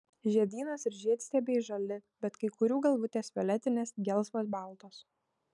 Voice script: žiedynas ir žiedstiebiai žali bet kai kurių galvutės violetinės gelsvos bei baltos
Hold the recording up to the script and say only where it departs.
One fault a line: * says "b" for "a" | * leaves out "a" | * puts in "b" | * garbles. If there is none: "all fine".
* leaves out "bei"